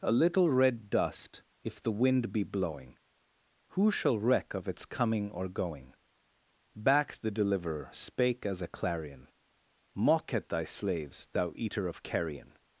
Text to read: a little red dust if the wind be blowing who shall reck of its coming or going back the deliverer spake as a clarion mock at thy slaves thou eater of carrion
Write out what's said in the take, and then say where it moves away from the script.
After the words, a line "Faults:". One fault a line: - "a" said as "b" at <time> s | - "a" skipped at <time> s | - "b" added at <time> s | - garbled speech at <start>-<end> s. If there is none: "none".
a little red dust if the wind be blowing who shall reck of its coming or going back the deliverer spake as a clarion mock at thy slaves thou eater of carrion
Faults:
none